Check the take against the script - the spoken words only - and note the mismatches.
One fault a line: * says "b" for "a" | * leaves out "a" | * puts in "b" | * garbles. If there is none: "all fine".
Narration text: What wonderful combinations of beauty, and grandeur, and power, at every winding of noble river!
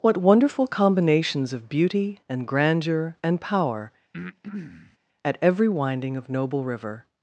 all fine